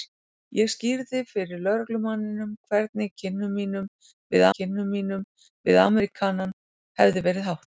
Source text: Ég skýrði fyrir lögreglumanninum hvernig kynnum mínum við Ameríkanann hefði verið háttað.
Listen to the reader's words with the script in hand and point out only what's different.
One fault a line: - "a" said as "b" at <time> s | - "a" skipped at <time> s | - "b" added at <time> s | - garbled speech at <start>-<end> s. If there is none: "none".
- "kynnum mínum við" added at 4.6 s